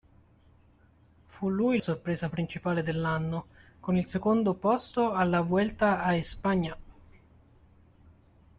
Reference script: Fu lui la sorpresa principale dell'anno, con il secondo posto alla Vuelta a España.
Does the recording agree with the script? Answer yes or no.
no